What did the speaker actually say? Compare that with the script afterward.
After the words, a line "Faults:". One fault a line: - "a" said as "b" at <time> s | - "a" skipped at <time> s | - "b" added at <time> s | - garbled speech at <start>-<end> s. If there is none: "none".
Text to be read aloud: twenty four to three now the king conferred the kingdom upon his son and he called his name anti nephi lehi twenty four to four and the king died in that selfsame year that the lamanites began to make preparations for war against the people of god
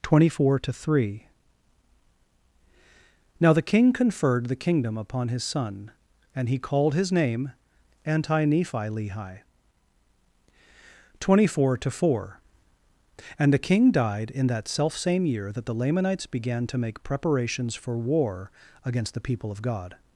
twenty four to three now the king conferred the kingdom upon his son and he called his name anti nephi lehi twenty four to four and the king died in that selfsame year that the lamanites began to make preparations for war against the people of god
Faults:
none